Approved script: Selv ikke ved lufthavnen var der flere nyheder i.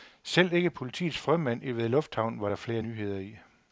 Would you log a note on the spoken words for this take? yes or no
yes